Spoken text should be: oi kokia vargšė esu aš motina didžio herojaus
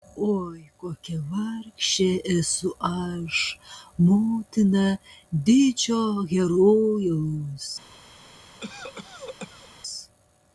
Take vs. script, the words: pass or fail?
pass